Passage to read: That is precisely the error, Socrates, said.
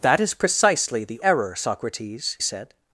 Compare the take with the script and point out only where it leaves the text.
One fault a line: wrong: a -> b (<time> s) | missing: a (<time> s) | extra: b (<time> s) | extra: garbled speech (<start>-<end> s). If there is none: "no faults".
no faults